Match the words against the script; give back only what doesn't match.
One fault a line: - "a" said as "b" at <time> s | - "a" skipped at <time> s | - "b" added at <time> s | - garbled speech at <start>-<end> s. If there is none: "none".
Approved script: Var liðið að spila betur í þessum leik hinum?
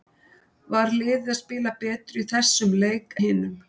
none